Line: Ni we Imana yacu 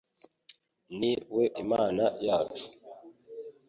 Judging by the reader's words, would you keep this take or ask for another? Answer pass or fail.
pass